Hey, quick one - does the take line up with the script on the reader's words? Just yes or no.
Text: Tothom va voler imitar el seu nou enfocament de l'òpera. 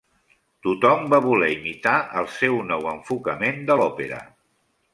yes